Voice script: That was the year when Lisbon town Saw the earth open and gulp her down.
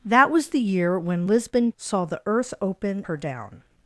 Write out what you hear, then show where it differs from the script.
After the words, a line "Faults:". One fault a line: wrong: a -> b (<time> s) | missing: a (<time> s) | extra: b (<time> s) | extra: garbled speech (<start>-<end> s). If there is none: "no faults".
That was the year when Lisbon Saw the earth open her down.
Faults:
missing: town (1.7 s)
missing: and gulp (3.1 s)